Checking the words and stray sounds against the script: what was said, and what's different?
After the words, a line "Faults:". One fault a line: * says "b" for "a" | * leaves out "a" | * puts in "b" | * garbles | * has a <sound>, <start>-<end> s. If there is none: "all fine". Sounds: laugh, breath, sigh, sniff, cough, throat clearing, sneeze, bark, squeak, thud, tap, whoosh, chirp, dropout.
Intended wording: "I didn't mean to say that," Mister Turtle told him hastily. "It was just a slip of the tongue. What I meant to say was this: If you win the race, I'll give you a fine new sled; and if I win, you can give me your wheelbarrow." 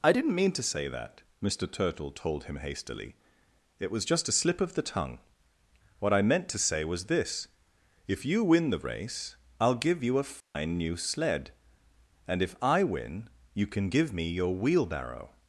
"I didn't mean to say that," Mister Turtle told him hastily. "It was just a slip of the tongue. What I meant to say was this: If you win the race, I'll give you a fine new sled; and if I win, you can give me your wheelbarrow."
Faults:
* has a dropout, 10.4-10.6 s